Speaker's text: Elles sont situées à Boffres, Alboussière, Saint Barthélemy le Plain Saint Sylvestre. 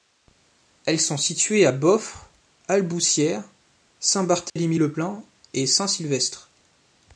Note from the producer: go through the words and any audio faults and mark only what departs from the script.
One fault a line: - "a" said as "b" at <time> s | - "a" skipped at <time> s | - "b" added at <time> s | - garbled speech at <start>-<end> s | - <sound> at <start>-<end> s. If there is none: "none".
- dropout at 4.5-4.6 s
- "et" added at 5.5 s